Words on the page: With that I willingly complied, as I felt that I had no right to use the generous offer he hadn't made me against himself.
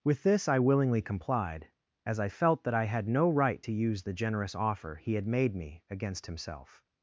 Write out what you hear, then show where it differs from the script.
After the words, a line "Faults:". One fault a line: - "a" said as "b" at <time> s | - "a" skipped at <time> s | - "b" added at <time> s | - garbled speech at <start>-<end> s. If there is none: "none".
With this I willingly complied, as I felt that I had no right to use the generous offer he had made me against himself.
Faults:
- "that" said as "this" at 0.2 s
- "hadn't" said as "had" at 5.1 s